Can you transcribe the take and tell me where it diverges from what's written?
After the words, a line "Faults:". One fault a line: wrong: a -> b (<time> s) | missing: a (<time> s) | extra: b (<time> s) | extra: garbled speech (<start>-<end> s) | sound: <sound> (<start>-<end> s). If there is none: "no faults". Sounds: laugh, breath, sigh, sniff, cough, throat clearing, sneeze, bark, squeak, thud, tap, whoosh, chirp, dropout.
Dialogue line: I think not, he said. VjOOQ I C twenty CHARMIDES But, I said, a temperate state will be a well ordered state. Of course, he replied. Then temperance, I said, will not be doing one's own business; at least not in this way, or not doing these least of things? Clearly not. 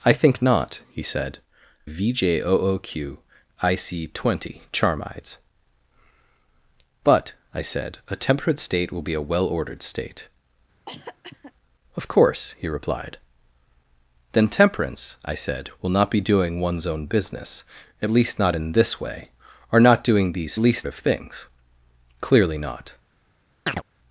I think not, he said. VjOOQ I C twenty CHARMIDES But, I said, a temperate state will be a well ordered state. Of course, he replied. Then temperance, I said, will not be doing one's own business; at least not in this way, or not doing these least of things? Clearly not.
Faults:
sound: cough (10.9-11.5 s)
sound: chirp (23.7-23.8 s)